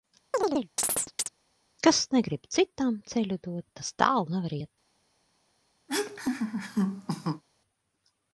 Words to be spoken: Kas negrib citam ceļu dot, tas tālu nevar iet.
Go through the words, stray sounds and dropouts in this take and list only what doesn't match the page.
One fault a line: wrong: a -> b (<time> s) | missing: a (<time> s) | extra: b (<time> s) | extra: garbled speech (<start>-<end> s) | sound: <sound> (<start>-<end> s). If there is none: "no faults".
sound: chirp (0.3-1.3 s)
sound: laugh (5.9-7.4 s)